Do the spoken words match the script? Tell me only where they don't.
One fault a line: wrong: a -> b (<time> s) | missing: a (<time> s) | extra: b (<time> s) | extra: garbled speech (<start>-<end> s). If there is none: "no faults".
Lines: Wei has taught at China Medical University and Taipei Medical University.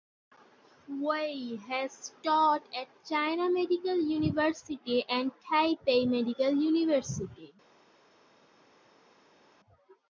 no faults